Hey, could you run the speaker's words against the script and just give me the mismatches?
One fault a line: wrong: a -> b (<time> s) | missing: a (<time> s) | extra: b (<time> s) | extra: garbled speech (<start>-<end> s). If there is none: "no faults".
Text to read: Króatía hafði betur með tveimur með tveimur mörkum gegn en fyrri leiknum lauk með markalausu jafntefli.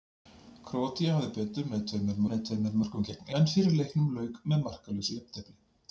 no faults